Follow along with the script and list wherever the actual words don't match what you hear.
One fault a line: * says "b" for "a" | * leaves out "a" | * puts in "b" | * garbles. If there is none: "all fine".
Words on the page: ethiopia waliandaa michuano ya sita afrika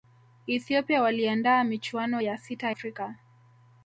all fine